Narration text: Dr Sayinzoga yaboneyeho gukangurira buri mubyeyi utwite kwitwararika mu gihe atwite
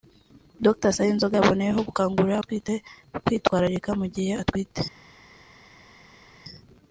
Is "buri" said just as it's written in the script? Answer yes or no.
no